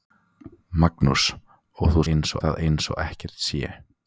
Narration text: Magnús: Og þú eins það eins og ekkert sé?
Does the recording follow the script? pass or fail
pass